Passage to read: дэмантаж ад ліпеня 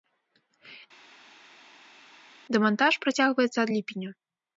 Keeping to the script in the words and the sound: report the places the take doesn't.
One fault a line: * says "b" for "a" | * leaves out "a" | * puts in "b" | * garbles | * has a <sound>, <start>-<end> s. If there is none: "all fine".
* puts in "працягваецца"